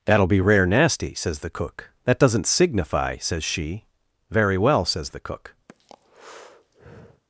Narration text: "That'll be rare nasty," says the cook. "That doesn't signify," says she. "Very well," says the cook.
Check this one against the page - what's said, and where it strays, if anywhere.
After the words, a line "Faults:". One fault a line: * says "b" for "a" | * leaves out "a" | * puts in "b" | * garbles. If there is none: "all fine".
"That'll be rare nasty," says the cook. "That doesn't signify," says she. "Very well," says the cook.
Faults:
all fine